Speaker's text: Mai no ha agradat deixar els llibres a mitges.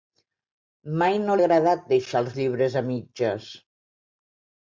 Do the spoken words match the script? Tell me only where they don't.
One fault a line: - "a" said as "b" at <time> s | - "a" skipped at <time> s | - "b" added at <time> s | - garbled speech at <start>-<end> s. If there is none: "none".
none